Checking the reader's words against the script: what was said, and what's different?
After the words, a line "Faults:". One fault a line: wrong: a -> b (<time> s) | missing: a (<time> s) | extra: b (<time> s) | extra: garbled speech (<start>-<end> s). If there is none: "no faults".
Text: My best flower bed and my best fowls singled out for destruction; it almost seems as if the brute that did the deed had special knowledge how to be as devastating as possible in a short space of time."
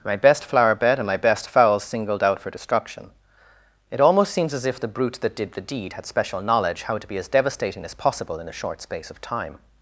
My best flower bed and my best fowls singled out for destruction; it almost seems as if the brute that did the deed had special knowledge how to be as devastating as possible in a short space of time."
Faults:
no faults